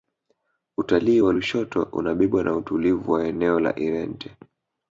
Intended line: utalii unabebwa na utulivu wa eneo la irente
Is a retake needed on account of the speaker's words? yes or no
yes